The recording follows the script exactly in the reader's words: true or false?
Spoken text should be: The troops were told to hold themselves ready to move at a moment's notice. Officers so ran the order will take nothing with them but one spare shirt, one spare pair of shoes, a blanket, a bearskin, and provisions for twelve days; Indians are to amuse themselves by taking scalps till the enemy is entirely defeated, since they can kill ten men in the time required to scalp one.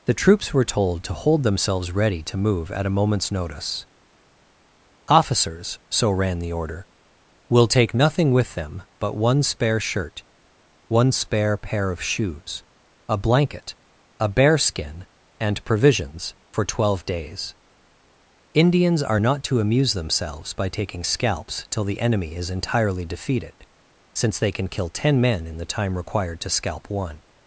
false